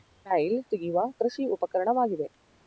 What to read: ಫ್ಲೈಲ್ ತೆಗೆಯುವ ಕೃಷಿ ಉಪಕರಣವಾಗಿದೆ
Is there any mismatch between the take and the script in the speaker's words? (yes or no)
no